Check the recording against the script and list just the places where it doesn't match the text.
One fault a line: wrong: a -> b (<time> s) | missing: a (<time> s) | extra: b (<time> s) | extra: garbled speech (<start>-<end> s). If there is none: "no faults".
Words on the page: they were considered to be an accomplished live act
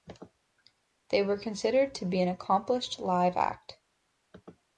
no faults